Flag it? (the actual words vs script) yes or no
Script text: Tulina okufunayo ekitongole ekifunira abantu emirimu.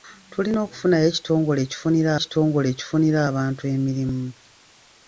yes